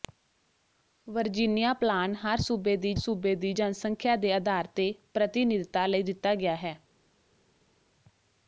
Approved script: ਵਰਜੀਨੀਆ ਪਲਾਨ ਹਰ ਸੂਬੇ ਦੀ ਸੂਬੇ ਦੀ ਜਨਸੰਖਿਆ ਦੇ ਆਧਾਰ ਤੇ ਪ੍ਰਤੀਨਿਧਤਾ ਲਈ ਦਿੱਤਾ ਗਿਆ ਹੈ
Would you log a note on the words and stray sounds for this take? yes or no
no